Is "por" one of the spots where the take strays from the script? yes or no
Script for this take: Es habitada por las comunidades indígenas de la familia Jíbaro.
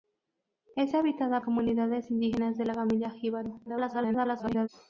yes